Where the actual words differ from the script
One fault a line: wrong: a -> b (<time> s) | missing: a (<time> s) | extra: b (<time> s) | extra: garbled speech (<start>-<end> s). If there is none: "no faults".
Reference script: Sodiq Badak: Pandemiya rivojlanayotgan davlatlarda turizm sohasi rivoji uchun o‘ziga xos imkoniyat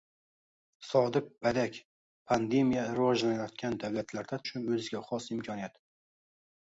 missing: turizm sohasi rivoji (4.4 s)